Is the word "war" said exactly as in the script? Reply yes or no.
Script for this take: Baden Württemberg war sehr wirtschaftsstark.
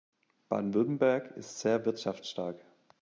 no